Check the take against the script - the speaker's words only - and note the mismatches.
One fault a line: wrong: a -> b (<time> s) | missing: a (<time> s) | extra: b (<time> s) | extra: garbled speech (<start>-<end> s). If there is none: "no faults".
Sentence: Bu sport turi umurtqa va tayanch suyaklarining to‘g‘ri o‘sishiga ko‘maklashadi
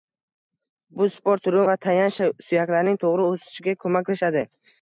missing: umurtqa (1.6 s)